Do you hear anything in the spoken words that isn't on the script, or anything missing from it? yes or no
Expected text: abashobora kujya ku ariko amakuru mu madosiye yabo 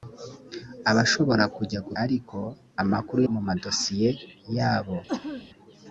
no